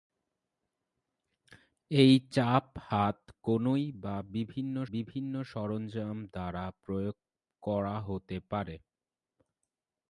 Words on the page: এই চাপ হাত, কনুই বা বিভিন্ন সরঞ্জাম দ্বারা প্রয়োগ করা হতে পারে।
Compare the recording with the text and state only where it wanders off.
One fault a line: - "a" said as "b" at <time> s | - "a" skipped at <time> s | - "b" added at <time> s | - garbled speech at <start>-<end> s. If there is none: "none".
- "বিভিন্ন" added at 4.9 s